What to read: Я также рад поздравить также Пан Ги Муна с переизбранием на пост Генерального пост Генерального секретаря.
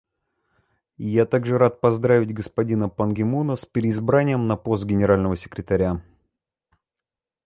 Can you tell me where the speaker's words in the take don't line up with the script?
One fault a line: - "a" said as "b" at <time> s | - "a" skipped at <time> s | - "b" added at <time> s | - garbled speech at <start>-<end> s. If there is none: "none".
- "также" said as "господина" at 2.3 s
- "пост Генерального" skipped at 5.4 s